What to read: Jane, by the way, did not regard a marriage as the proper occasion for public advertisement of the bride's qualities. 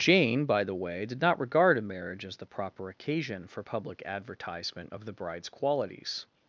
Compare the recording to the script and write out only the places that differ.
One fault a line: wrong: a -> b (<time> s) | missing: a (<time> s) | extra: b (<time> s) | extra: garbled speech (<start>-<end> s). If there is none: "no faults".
no faults